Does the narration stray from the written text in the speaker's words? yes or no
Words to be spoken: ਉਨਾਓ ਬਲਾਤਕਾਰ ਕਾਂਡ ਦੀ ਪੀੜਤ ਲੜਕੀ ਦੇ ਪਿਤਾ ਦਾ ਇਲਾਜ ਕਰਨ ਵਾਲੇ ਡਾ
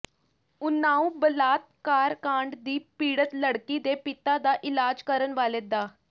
no